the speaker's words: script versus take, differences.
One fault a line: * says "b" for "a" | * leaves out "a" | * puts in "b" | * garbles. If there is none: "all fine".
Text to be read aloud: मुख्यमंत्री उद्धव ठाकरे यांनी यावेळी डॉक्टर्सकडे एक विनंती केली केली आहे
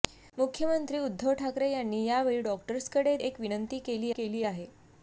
all fine